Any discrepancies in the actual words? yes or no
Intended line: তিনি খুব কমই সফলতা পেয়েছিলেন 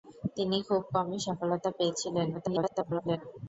yes